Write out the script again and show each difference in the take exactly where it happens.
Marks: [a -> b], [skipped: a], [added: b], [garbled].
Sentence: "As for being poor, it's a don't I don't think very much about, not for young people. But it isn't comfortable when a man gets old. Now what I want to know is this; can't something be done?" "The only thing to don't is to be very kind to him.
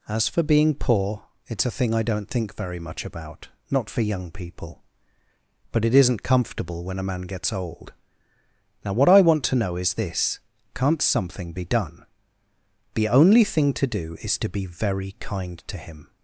"As for being poor, it's a [don't -> thing] I don't think very much about, not for young people. But it isn't comfortable when a man gets old. Now what I want to know is this; can't something be done?" "The only thing to [don't -> do] is to be very kind to him.